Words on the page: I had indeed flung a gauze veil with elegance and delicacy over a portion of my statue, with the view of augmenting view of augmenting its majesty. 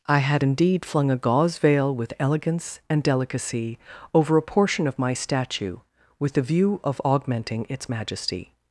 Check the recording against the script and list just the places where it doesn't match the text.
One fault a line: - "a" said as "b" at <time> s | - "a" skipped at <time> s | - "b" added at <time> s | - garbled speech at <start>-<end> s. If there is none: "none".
- "view of augmenting" skipped at 7.7 s